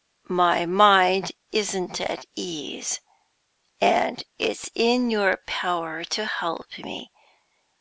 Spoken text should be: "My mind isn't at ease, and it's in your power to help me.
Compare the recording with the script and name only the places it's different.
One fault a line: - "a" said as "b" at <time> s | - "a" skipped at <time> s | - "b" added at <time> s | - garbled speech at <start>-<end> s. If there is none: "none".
none